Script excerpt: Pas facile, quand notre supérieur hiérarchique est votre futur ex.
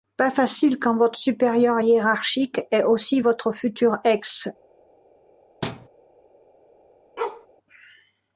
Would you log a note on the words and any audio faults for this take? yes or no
yes